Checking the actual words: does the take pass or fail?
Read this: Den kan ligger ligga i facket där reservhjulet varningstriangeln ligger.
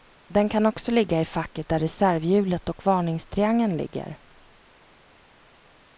fail